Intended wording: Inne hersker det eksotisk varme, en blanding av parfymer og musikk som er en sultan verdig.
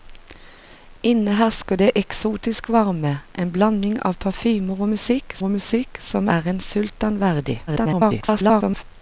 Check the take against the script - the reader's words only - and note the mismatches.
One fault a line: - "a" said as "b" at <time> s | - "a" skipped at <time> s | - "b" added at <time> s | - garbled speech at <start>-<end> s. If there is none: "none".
- "og musikk" added at 5.4 s
- garbled speech at 7.7-8.8 s